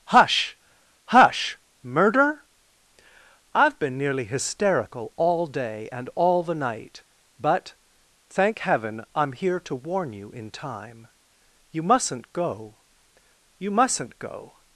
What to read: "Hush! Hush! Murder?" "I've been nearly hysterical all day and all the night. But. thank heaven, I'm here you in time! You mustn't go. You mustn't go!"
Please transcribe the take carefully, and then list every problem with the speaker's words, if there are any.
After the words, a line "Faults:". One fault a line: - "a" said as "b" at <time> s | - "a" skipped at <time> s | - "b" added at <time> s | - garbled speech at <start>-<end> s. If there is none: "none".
"Hush! Hush! Murder?" "I've been nearly hysterical all day and all the night. But. thank heaven, I'm here to warn you in time! You mustn't go. You mustn't go!"
Faults:
- "to warn" added at 9.6 s